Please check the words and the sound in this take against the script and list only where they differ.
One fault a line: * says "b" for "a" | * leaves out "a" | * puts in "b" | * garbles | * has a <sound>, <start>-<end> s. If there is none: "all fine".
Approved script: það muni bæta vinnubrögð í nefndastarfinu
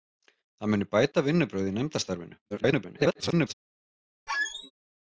* garbles
* has a squeak, 4.3-4.7 s